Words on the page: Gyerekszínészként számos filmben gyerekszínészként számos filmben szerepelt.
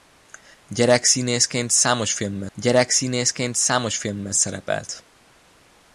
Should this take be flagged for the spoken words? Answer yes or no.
no